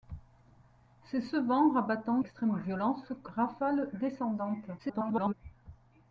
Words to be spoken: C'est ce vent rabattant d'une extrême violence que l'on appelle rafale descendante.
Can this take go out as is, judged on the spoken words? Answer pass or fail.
fail